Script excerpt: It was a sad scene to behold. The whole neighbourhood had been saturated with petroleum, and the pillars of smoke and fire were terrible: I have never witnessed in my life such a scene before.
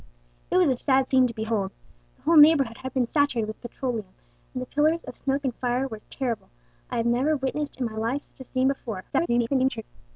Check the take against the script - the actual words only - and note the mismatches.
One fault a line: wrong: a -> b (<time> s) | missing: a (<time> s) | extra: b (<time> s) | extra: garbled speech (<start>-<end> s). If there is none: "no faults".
extra: garbled speech (9.1-9.8 s)